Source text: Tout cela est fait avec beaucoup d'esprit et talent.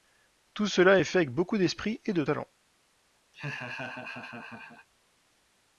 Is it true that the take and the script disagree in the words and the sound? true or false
true